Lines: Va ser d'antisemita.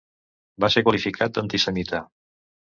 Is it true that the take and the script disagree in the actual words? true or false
true